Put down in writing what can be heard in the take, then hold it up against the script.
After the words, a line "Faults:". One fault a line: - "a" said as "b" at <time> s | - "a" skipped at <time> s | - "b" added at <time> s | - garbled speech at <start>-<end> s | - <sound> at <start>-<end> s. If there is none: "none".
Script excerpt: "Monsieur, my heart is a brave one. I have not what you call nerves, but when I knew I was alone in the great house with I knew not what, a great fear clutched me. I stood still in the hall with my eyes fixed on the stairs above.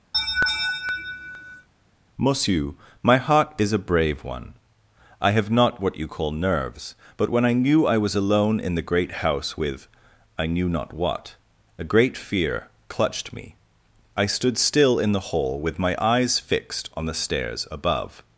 "Monsieur, my heart is a brave one. I have not what you call nerves, but when I knew I was alone in the great house with I knew not what, a great fear clutched me. I stood still in the hall with my eyes fixed on the stairs above.
Faults:
- laugh at 0.1-1.7 s